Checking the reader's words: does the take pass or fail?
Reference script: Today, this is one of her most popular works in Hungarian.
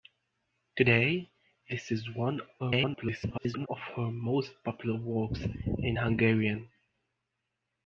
fail